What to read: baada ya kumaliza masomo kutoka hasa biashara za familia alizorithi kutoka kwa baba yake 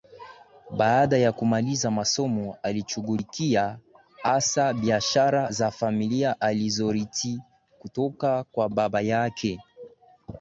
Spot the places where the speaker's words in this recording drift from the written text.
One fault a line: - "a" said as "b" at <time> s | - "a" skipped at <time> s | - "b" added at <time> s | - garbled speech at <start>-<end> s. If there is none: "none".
- "kutoka" said as "alishughulikia" at 2.6 s